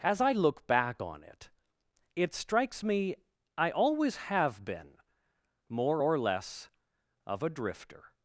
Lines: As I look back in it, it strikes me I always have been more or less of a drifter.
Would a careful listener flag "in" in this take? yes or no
yes